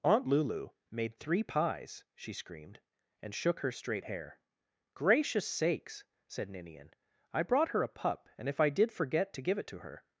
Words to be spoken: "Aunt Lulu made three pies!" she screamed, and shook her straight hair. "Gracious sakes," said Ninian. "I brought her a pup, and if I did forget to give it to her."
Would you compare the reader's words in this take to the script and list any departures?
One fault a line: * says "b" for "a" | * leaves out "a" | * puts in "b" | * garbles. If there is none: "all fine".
all fine